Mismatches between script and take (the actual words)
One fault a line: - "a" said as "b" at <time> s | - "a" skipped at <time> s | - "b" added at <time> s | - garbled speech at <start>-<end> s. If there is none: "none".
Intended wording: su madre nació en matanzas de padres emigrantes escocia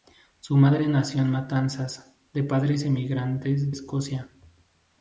none